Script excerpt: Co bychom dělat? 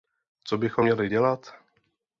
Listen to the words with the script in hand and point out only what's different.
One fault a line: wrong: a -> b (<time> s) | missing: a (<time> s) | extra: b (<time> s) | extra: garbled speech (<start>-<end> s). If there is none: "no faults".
extra: měli (0.8 s)